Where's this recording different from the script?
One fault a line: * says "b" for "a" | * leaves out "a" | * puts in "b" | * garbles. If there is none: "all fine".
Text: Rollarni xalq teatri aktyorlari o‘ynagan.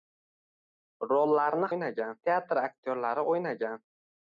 * says "o‘ynagan" for "xalq"